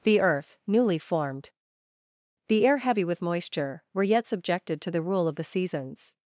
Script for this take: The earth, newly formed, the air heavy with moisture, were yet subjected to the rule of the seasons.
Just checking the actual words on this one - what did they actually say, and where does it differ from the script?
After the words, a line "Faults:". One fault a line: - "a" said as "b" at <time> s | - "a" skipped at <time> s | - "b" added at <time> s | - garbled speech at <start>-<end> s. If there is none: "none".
The earth, newly formed, the air heavy with moisture, were yet subjected to the rule of the seasons.
Faults:
none